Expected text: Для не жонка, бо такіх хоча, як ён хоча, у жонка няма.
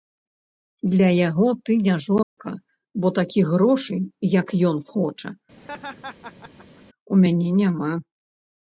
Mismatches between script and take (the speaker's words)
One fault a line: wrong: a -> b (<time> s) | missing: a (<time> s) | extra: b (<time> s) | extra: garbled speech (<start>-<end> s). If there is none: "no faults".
extra: яго ты (1.3 s)
wrong: хоча -> грошай (3.5 s)
wrong: жонка -> мяне (7.2 s)